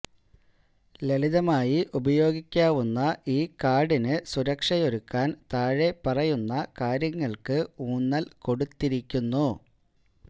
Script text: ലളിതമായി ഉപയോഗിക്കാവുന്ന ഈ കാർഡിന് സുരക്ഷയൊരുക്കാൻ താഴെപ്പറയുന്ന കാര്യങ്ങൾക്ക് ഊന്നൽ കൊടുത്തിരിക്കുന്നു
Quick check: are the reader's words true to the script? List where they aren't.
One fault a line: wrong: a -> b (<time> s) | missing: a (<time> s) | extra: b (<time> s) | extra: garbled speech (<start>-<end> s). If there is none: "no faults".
no faults